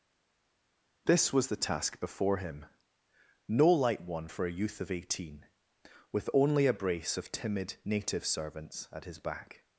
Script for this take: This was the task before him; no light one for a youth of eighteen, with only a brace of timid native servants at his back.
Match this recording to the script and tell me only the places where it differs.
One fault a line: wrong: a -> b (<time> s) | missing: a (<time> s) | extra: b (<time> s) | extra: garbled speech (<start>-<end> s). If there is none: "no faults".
no faults